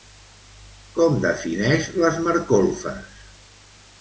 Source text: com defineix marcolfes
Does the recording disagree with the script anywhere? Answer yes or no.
yes